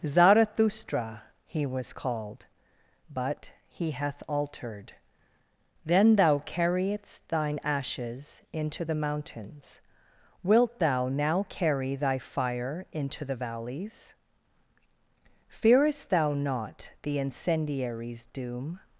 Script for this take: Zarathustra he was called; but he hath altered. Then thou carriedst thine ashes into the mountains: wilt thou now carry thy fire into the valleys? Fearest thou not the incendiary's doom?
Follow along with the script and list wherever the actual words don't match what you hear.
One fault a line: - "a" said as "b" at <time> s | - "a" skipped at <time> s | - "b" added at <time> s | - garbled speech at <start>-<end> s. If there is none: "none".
none